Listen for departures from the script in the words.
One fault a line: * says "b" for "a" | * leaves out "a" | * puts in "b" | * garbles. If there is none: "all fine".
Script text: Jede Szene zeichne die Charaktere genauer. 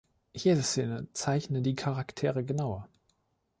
all fine